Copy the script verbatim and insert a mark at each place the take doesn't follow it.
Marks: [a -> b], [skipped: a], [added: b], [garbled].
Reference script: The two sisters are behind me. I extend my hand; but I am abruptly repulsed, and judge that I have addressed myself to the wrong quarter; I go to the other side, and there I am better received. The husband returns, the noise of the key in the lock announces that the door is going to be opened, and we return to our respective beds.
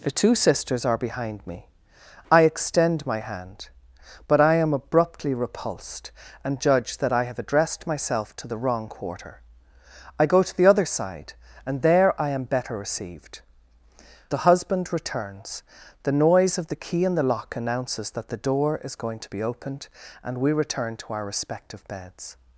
The two sisters are behind me. I extend my hand; but I am abruptly repulsed, and judge that I have addressed myself to the wrong quarter; I go to the other side, and there I am better received. The husband returns, the noise of the key in the lock announces that the door is going to be opened, and we return to our respective beds.